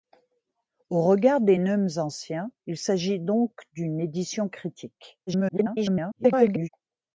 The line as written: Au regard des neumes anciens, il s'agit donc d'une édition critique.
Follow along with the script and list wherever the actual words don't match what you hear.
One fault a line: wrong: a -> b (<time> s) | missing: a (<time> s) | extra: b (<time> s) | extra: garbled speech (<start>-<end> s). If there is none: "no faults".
extra: garbled speech (5.3-6.7 s)